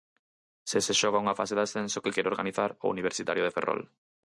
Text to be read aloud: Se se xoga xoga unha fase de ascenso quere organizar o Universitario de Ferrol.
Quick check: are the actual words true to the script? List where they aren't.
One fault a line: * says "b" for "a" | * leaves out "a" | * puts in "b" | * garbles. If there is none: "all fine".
* leaves out "xoga"
* puts in "que"